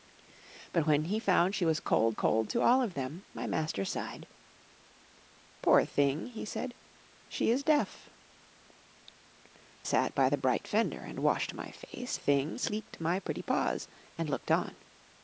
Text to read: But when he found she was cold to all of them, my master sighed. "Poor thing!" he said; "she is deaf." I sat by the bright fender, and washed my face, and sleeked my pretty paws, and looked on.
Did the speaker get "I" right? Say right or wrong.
wrong